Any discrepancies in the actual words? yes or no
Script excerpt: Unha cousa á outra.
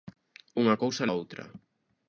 no